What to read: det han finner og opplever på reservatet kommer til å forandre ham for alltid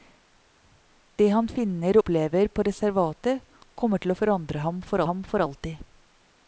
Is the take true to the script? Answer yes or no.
no